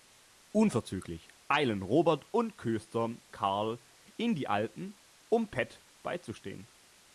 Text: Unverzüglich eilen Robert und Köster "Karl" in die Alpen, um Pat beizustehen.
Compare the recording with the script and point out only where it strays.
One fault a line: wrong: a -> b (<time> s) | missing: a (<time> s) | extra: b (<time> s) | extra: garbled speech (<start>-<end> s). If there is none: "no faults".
no faults